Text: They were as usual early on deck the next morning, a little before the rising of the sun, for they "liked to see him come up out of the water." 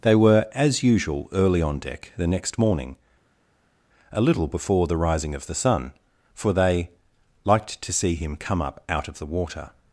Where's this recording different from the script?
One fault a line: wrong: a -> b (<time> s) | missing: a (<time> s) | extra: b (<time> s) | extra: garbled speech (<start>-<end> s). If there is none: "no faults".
no faults